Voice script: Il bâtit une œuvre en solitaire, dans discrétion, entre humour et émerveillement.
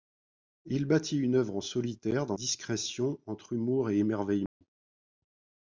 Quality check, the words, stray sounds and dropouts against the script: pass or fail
fail